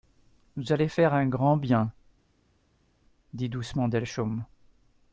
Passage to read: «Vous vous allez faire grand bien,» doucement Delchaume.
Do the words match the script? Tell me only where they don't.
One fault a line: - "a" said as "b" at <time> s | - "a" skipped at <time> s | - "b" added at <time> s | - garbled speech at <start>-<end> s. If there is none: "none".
- "vous" skipped at 0.7 s
- "un" added at 1.1 s
- "dit" added at 3.3 s